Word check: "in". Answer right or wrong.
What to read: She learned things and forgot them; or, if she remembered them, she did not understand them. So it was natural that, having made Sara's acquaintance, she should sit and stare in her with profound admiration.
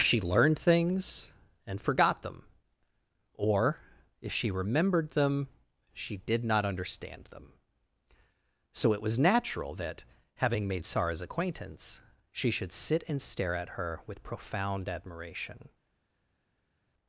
wrong